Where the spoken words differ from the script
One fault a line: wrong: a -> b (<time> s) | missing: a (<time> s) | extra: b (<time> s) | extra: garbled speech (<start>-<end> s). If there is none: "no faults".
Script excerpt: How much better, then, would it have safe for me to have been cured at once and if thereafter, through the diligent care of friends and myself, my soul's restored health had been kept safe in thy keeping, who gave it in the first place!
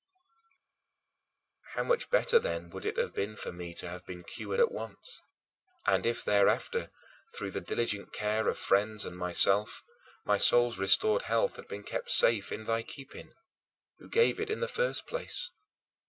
wrong: safe -> been (3.1 s)